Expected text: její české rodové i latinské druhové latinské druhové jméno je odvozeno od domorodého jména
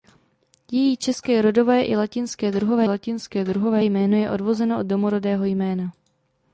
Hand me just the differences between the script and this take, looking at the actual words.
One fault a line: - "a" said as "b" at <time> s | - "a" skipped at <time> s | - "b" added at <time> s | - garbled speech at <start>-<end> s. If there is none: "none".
none